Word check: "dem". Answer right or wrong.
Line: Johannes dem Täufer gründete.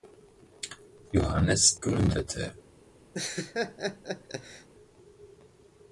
wrong